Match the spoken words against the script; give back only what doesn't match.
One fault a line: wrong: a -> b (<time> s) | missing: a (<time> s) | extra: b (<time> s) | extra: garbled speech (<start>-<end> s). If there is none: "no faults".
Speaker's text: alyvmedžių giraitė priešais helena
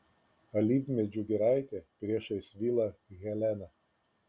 extra: vilą (2.6 s)